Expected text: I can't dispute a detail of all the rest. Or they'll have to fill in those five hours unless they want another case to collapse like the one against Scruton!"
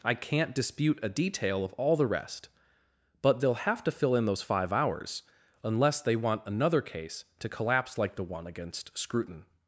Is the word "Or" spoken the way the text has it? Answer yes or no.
no